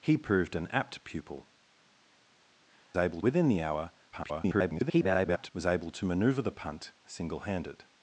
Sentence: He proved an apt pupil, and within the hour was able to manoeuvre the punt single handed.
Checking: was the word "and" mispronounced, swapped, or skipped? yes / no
yes